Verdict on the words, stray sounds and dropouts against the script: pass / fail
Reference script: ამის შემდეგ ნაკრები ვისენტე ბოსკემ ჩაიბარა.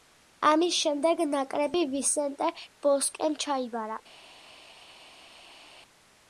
pass